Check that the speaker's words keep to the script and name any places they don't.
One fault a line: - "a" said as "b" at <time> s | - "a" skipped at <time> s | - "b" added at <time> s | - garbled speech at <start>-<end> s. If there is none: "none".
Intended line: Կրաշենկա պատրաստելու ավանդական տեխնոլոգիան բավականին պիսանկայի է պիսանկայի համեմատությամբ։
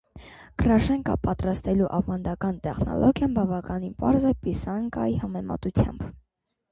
- "պիսանկայի" said as "պարզ" at 4.0 s